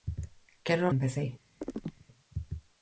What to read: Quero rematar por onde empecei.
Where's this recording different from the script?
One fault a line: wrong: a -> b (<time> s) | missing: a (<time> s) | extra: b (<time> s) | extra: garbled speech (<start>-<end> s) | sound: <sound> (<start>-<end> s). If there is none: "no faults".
missing: rematar por onde (0.9 s)
sound: chirp (1.6-2.1 s)